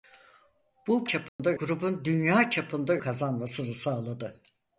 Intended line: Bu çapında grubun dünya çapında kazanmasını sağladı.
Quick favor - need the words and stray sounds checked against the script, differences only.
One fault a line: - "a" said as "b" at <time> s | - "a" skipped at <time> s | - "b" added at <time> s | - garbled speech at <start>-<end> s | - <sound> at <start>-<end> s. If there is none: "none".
- dropout at 1.3-1.4 s